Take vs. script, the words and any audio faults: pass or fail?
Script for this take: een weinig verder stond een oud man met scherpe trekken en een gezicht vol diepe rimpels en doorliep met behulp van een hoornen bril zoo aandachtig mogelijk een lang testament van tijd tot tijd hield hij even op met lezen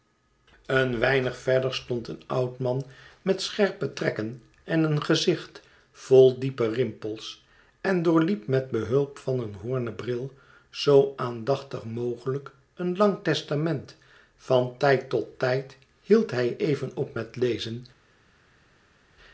pass